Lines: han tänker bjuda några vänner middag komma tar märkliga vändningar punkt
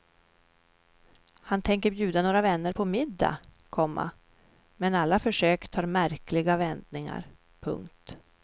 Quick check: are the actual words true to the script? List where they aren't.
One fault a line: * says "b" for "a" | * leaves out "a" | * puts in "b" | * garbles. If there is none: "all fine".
* puts in "på"
* puts in "men alla försök"